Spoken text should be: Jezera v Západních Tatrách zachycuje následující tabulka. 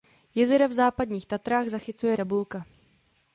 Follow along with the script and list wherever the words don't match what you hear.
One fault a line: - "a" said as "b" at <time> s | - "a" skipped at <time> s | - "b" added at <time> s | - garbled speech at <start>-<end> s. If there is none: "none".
- "následující" skipped at 2.2 s